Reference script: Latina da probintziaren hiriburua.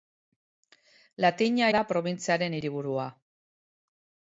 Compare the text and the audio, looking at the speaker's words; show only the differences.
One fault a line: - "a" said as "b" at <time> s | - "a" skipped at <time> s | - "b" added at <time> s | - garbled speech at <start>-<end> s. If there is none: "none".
none